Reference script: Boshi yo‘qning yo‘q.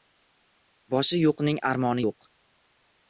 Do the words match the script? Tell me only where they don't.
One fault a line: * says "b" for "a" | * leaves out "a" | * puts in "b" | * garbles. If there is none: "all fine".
* puts in "armoni"